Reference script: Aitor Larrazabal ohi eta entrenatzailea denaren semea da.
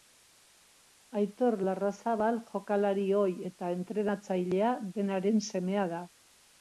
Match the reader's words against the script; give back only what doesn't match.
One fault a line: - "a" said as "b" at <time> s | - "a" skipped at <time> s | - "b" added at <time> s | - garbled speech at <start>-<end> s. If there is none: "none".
- "jokalari" added at 2.5 s